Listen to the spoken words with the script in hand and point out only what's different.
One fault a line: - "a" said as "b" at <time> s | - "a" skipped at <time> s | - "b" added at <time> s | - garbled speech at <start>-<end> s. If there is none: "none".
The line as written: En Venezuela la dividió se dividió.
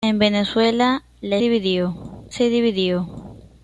none